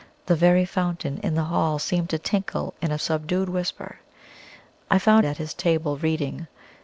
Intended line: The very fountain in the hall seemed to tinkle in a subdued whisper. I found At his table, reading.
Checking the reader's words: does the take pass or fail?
pass